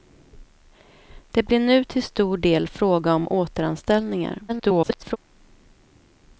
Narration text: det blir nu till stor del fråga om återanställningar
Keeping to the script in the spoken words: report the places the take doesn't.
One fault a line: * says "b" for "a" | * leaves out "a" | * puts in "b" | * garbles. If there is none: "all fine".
* garbles